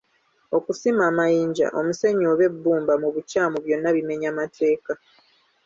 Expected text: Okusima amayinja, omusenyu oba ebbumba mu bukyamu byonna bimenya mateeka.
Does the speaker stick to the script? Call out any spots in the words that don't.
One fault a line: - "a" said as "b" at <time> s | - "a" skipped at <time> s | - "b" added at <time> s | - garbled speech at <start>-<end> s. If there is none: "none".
none